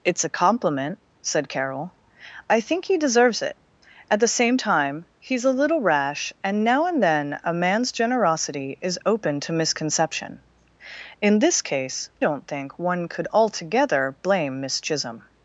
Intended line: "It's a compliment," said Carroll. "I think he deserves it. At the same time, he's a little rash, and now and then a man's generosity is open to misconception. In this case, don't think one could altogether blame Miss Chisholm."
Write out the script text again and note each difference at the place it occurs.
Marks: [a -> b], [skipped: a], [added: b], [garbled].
"It's a compliment," said Carroll. "I think he deserves it. At the same time, he's a little rash, and now and then a man's generosity is open to misconception. In this case, don't think one could altogether blame Miss Chisholm."